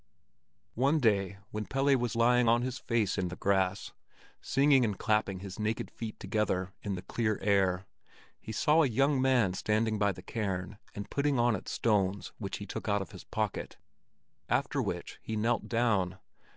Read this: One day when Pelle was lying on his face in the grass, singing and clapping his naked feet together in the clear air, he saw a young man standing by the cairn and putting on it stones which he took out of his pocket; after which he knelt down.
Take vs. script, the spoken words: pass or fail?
pass